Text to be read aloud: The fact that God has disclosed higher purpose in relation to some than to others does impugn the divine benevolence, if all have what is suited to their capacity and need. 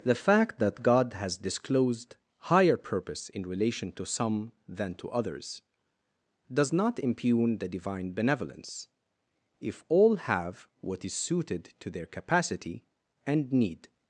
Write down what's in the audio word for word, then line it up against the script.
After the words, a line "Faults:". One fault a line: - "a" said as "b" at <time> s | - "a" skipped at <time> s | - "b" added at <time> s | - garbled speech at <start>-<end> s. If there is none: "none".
The fact that God has disclosed higher purpose in relation to some than to others does not impugn the divine benevolence, if all have what is suited to their capacity and need.
Faults:
- "not" added at 6.7 s